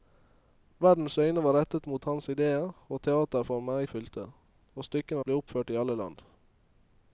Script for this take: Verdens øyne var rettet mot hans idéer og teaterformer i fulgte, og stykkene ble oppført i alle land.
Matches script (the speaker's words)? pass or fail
pass